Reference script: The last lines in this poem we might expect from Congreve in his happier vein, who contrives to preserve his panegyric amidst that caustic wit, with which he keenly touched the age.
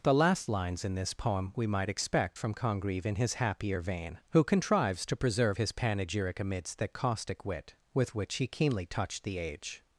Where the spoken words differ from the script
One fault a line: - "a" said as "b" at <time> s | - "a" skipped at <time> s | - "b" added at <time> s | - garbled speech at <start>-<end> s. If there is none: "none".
none